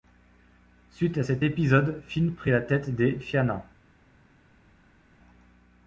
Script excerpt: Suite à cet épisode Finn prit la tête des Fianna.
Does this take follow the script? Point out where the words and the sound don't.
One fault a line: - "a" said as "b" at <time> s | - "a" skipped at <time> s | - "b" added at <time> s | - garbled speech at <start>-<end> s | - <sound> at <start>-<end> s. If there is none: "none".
none